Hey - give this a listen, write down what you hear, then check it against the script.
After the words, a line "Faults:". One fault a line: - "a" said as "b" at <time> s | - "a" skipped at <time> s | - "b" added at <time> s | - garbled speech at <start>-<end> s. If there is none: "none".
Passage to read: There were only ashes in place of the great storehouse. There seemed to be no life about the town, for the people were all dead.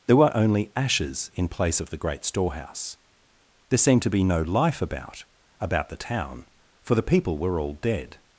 There were only ashes in place of the great storehouse. There seemed to be no life about about the town, for the people were all dead.
Faults:
- "about" added at 5.6 s